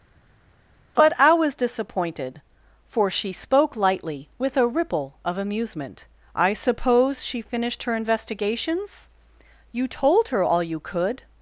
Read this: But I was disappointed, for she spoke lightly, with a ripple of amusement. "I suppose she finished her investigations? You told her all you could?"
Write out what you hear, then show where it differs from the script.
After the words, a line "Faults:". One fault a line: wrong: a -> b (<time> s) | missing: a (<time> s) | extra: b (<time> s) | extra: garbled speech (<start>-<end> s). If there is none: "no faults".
But I was disappointed, for she spoke lightly, with a ripple of amusement. "I suppose she finished her investigations? You told her all you could?"
Faults:
no faults